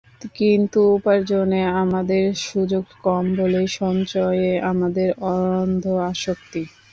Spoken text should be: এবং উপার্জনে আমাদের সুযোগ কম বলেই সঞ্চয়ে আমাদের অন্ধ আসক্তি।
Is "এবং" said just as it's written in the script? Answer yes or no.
no